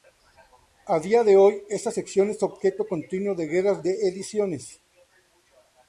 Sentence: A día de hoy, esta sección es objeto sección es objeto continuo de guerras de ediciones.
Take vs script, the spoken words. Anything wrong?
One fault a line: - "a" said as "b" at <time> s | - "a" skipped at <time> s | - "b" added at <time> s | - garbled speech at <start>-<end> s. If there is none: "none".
- "sección es objeto" skipped at 2.9 s